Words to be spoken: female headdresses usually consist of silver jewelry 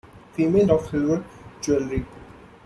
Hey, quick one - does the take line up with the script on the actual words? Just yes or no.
no